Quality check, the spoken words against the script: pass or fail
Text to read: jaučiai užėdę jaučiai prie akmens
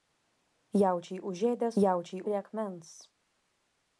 pass